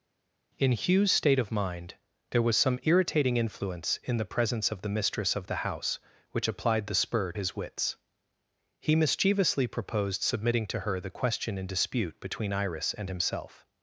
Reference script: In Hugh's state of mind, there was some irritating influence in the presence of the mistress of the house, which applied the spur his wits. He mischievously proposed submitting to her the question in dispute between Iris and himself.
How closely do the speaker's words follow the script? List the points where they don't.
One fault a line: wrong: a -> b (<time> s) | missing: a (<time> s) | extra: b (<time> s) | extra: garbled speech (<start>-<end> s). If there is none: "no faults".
no faults